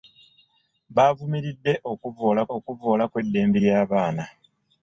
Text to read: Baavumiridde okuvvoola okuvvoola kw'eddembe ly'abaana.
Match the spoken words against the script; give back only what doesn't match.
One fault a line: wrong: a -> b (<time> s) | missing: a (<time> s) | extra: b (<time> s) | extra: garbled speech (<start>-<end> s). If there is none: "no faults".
no faults